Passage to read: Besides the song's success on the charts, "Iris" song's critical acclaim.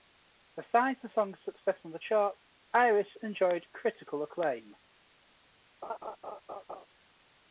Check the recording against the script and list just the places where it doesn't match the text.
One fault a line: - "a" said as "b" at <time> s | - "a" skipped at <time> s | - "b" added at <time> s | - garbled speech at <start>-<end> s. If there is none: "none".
- "song's" said as "enjoyed" at 3.2 s